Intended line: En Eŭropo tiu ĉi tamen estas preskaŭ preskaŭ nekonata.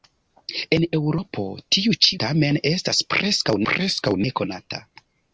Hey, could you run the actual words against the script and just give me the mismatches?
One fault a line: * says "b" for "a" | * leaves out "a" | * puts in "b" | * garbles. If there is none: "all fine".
all fine